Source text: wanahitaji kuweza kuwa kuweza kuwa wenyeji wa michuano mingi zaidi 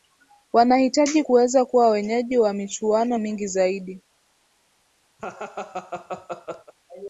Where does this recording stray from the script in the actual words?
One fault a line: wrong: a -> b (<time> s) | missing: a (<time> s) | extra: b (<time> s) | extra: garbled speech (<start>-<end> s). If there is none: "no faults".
missing: kuweza kuwa (1.9 s)